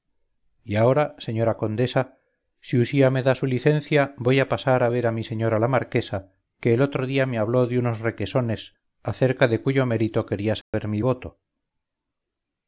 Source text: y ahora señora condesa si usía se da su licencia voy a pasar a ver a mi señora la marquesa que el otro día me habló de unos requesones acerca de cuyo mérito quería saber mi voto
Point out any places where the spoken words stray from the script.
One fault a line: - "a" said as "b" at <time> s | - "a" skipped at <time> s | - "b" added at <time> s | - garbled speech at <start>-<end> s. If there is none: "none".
- "se" said as "me" at 3.1 s